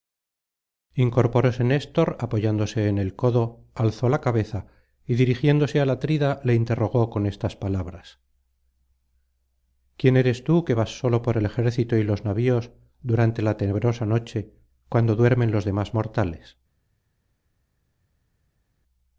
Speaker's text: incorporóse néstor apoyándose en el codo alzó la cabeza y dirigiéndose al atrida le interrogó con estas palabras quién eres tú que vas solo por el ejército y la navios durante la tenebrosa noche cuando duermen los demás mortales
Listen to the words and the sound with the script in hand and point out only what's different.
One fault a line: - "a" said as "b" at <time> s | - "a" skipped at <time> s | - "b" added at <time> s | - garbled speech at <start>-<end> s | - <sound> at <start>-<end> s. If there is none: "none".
- "la" said as "los" at 12.0 s